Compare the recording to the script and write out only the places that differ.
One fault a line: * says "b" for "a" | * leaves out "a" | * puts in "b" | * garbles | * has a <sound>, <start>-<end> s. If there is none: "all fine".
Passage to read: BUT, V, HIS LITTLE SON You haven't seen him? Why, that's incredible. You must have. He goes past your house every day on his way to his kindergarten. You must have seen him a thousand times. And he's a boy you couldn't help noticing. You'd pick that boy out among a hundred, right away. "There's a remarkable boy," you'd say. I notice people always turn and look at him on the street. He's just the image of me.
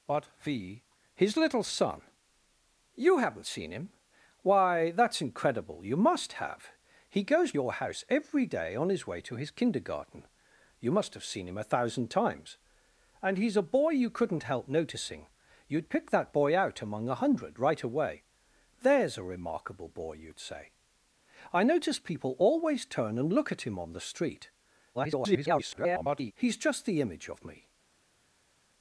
* leaves out "past"
* garbles